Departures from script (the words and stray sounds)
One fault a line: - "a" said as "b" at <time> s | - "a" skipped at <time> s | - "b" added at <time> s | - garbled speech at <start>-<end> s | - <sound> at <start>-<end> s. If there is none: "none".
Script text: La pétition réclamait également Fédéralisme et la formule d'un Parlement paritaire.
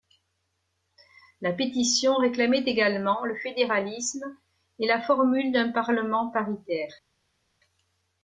- "le" added at 3.2 s